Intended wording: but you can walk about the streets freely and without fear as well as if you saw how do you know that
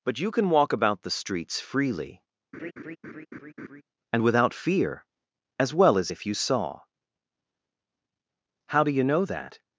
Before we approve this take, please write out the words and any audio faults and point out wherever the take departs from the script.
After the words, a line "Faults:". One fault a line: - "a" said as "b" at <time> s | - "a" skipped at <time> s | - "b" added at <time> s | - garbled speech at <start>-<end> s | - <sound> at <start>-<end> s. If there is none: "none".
but you can walk about the streets freely and without fear as well as if you saw how do you know that
Faults:
- laugh at 2.5-3.8 s